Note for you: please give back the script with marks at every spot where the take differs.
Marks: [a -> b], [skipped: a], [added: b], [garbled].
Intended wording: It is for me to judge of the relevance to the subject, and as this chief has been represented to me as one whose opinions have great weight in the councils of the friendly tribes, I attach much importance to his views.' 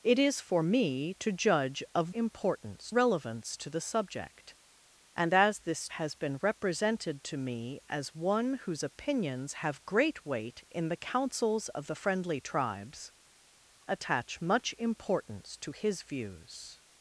It is for me to judge of [the -> importance] relevance to the subject, and as this [skipped: chief] has been represented to me as one whose opinions have great weight in the councils of the friendly tribes, [skipped: I] attach much importance to his views.'